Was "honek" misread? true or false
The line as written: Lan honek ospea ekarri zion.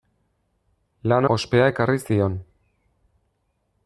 true